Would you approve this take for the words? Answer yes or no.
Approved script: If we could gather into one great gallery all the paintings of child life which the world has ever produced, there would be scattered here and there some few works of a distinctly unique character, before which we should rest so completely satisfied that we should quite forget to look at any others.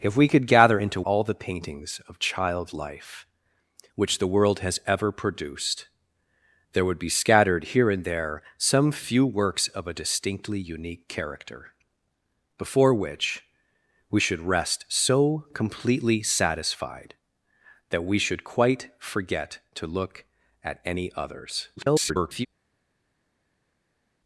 no